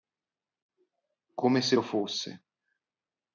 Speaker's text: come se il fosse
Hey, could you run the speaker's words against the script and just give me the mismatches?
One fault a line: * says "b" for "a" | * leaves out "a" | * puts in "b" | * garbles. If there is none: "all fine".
* says "lo" for "il"